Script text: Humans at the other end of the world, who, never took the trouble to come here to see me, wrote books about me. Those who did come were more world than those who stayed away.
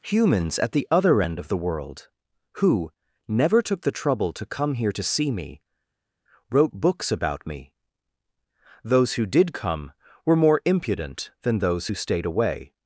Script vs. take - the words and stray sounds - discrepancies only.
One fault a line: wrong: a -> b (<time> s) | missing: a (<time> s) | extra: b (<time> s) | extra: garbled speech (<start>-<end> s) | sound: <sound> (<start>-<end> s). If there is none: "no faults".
wrong: world -> impudent (10.6 s)